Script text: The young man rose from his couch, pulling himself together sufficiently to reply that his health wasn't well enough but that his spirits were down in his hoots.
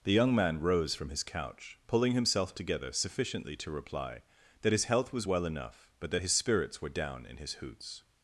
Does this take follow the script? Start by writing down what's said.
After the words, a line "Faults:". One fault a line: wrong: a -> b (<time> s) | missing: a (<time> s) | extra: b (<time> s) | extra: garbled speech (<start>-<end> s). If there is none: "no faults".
The young man rose from his couch, pulling himself together sufficiently to reply that his health was well enough but that his spirits were down in his hoots.
Faults:
wrong: wasn't -> was (5.1 s)